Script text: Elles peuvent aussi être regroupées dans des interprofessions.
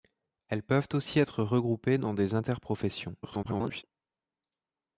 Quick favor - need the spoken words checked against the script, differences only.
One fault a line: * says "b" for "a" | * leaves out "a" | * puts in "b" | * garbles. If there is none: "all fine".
* garbles